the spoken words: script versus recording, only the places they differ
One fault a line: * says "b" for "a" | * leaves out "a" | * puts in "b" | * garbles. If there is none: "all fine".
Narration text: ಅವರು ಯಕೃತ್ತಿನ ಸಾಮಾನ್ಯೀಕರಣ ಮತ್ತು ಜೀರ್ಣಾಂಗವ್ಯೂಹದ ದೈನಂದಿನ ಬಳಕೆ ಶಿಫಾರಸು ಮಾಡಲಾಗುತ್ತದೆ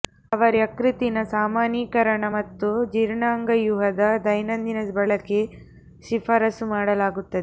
all fine